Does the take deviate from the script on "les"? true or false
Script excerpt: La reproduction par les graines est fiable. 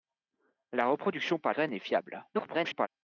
true